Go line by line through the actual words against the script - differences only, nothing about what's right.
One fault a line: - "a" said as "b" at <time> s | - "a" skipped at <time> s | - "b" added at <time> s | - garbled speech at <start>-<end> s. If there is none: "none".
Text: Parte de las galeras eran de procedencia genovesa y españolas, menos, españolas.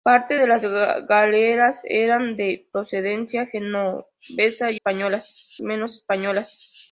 none